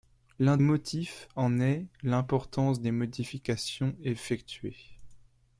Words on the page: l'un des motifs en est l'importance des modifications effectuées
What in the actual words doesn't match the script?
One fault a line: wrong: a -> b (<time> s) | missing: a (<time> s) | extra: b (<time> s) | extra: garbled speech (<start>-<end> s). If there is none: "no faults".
missing: des (0.6 s)